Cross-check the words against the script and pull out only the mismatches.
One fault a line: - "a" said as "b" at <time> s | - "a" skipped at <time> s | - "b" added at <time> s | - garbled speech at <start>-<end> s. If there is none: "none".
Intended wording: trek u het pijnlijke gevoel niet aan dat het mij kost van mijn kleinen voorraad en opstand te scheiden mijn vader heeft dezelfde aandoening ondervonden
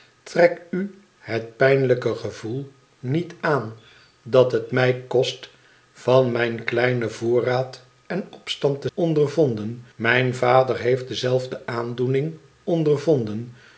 - "scheiden" said as "ondervonden" at 8.9 s